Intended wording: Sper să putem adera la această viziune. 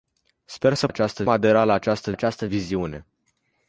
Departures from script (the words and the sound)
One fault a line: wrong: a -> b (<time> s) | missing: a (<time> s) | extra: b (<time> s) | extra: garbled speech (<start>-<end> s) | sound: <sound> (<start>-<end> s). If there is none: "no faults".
wrong: putem -> această (0.9 s)
extra: această (2.1 s)